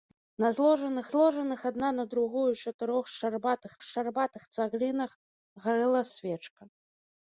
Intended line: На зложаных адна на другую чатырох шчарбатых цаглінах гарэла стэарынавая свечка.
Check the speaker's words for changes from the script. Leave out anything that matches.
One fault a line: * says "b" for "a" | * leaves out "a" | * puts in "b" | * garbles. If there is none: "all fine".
* puts in "зложаных"
* puts in "шчарбатых"
* leaves out "стэарынавая"